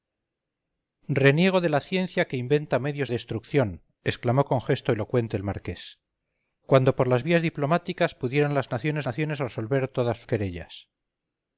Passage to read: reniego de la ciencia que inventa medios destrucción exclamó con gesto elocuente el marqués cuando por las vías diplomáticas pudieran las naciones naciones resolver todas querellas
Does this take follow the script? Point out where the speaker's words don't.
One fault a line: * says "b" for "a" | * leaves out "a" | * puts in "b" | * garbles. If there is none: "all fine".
all fine